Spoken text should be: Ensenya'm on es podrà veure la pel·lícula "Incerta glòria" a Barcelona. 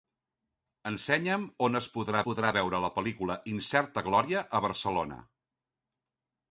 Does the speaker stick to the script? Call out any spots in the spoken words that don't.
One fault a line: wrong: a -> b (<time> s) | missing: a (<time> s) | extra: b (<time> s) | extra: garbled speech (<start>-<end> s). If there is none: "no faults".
extra: podrà (2.3 s)